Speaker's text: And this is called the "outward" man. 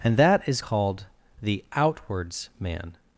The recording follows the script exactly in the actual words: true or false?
false